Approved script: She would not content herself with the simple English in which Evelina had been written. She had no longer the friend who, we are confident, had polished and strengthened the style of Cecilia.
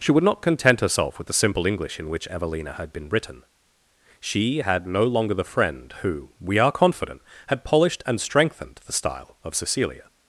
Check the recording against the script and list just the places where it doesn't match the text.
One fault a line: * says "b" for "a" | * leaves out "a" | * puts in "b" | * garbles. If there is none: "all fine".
all fine